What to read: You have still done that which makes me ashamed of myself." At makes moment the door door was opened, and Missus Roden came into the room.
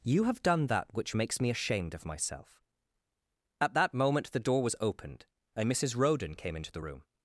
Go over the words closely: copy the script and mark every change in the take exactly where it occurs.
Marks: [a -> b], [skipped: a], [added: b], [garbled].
You have [skipped: still] done that which makes me ashamed of myself." At [makes -> that] moment the door [skipped: door] was opened, and Missus Roden came into the room.